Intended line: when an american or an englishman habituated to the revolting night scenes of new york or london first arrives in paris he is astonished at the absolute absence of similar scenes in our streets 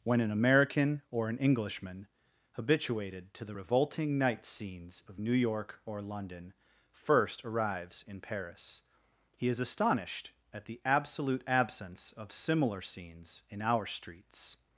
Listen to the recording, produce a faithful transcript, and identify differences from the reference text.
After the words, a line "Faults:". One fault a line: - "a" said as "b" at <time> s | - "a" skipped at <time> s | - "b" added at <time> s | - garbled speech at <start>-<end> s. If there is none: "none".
when an american or an englishman habituated to the revolting night scenes of new york or london first arrives in paris he is astonished at the absolute absence of similar scenes in our streets
Faults:
none